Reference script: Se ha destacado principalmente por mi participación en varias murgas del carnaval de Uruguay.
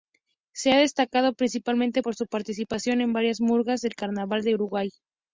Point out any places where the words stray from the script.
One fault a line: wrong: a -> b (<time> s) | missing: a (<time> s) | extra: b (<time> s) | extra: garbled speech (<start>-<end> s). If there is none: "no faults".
wrong: mi -> su (2.1 s)